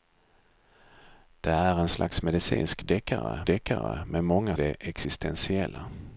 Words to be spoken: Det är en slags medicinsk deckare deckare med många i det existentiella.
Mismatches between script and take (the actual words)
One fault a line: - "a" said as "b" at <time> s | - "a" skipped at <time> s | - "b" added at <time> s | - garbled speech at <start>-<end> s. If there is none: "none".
none